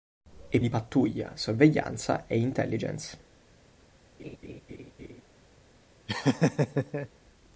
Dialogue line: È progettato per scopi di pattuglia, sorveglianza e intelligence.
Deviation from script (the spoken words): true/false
true